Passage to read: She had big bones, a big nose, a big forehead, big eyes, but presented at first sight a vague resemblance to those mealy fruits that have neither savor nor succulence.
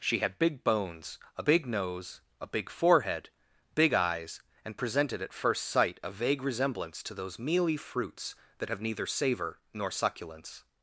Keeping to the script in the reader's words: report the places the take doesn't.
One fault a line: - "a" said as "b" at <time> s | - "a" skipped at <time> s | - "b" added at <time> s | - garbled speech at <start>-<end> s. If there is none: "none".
- "but" said as "and" at 4.6 s